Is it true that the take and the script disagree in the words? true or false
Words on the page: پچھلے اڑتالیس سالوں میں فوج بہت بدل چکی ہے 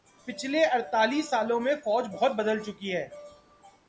false